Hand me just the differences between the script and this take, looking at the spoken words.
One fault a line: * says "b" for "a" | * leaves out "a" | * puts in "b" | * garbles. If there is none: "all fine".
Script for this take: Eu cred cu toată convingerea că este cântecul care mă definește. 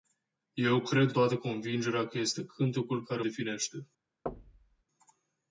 * leaves out "cu"
* leaves out "mă"